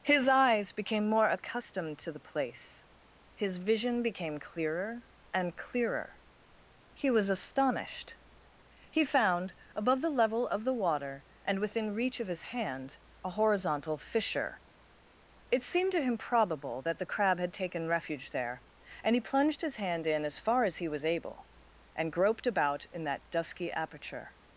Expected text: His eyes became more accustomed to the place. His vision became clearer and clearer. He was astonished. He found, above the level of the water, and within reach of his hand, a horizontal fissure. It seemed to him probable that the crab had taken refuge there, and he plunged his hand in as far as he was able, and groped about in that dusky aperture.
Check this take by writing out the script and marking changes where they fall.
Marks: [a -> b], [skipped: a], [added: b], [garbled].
His eyes became more accustomed to the place. His vision became clearer and clearer. He was astonished. He found, above the level of the water, and within reach of his hand, a horizontal fissure. It seemed to him probable that the crab had taken refuge there, and he plunged his hand in as far as he was able, and groped about in that dusky aperture.